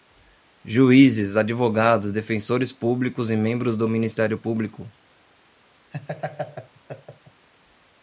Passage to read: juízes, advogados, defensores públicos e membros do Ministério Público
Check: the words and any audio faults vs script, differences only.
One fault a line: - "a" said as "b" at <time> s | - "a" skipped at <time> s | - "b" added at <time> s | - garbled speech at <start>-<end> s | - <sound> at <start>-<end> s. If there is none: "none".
- laugh at 5.9-7.5 s